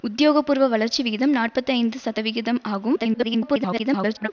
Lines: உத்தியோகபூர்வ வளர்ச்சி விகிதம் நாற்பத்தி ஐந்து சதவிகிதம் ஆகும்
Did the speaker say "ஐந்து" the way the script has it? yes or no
yes